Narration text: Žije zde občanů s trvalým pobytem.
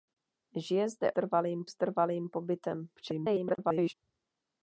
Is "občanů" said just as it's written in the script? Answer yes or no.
no